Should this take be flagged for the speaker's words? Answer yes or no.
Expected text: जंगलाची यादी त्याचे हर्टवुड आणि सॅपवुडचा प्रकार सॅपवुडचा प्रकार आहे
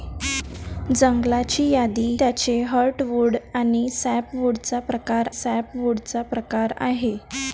no